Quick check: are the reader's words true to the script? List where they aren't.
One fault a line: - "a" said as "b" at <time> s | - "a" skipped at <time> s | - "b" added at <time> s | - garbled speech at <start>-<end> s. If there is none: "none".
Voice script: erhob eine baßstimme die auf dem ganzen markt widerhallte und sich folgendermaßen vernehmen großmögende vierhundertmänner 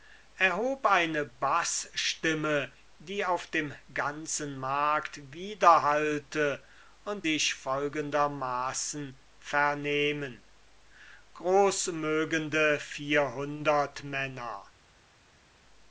none